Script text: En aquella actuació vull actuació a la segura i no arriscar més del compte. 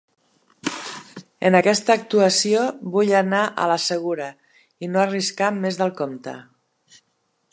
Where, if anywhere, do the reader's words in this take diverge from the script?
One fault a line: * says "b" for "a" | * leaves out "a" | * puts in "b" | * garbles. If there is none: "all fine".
* says "aquesta" for "aquella"
* says "anar" for "actuació"